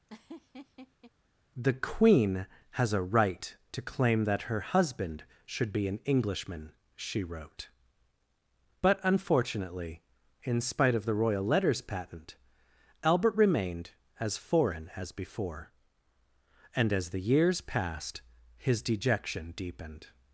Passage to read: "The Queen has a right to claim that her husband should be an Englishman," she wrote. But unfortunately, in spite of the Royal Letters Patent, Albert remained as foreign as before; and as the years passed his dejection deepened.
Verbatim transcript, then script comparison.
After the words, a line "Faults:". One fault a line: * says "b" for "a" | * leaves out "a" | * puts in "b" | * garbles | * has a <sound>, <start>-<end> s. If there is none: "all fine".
"The Queen has a right to claim that her husband should be an Englishman," she wrote. But unfortunately, in spite of the Royal Letters Patent, Albert remained as foreign as before; and as the years passed his dejection deepened.
Faults:
* has a laugh, 0.1-1.1 s